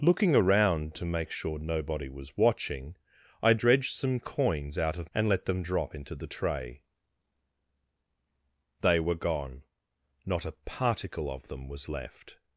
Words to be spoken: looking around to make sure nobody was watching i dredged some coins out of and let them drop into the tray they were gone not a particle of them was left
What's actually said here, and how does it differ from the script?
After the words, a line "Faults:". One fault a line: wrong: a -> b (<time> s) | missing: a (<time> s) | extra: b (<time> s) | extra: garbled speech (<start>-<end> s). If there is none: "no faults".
looking around to make sure nobody was watching i dredged some coins out of and let them drop into the tray they were gone not a particle of them was left
Faults:
no faults